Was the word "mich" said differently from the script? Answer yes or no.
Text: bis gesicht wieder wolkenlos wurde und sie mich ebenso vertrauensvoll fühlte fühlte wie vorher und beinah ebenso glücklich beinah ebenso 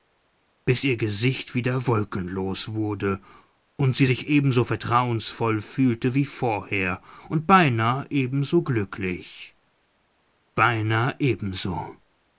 yes